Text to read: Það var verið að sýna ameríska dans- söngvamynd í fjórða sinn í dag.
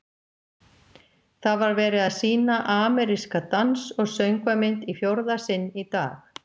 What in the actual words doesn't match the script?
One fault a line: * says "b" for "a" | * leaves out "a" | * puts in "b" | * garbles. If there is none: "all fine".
* puts in "og"